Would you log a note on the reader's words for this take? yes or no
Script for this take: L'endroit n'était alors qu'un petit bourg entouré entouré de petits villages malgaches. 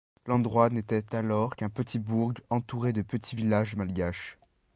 yes